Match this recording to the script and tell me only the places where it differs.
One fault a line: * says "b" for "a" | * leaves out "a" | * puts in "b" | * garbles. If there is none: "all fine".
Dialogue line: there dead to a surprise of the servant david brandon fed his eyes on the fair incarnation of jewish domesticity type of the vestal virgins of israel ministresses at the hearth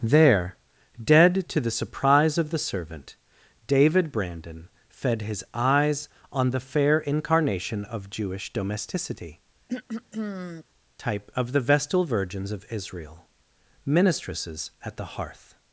* says "the" for "a"